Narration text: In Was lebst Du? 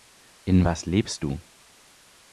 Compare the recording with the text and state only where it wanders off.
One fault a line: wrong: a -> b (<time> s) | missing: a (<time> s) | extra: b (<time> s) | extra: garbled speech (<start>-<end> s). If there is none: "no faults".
no faults